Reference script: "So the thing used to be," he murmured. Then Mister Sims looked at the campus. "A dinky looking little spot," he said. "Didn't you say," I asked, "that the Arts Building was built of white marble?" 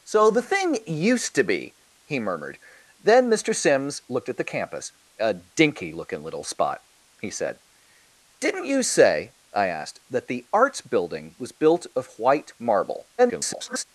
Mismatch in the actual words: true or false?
true